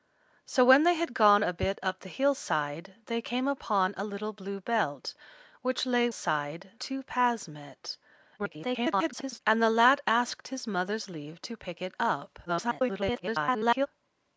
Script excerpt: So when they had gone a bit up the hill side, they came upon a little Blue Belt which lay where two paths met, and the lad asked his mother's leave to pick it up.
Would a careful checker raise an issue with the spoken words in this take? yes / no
yes